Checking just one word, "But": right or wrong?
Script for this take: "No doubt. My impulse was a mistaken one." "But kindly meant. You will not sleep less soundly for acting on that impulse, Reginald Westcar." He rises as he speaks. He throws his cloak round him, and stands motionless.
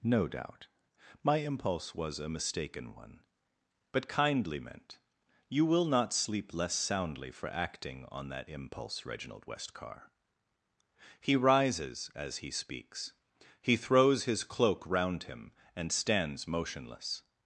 right